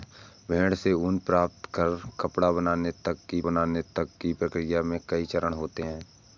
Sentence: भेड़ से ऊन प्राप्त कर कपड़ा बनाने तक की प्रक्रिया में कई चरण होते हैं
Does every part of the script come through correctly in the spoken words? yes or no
no